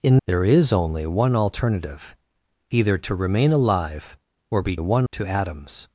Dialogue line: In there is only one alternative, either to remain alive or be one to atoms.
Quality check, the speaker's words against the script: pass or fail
pass